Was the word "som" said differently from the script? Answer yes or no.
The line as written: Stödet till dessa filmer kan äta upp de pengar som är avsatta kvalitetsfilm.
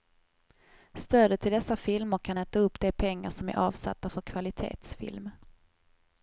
no